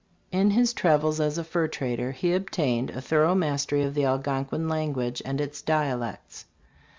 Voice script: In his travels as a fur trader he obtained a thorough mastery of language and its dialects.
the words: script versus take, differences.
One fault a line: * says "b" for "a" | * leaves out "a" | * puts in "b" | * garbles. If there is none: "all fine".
* puts in "the Algonquin"